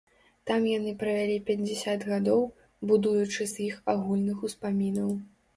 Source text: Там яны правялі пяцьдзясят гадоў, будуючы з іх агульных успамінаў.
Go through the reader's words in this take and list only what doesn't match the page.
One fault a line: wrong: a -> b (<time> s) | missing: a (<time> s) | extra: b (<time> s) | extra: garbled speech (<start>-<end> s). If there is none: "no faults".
no faults